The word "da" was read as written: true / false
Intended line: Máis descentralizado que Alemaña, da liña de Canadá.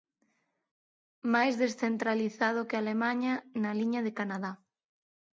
false